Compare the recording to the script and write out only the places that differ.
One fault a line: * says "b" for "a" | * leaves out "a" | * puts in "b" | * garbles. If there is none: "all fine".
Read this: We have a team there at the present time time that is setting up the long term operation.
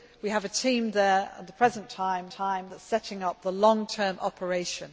all fine